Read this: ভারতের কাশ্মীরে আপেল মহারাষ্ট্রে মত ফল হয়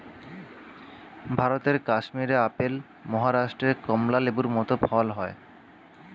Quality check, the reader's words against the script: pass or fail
fail